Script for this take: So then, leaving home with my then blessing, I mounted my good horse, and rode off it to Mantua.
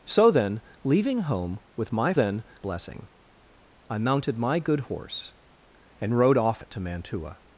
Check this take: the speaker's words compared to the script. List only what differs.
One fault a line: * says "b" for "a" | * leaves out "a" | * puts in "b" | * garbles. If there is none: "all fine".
all fine